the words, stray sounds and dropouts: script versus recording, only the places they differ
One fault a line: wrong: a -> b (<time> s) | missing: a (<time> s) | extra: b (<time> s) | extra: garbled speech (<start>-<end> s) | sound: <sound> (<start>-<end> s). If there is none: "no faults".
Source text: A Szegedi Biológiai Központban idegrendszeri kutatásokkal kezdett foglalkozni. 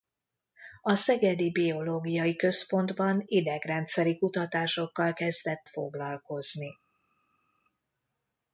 no faults